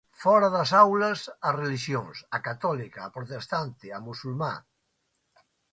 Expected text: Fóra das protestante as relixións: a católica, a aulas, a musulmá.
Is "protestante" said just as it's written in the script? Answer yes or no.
no